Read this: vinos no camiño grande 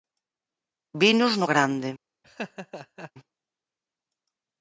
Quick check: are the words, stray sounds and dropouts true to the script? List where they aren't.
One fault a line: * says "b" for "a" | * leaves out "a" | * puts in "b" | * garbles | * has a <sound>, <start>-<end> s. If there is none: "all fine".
* leaves out "camiño"
* has a laugh, 2.2-3.1 s